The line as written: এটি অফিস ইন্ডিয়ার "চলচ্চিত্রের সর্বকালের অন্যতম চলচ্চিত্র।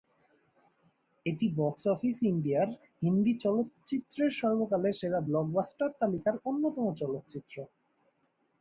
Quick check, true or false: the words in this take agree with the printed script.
false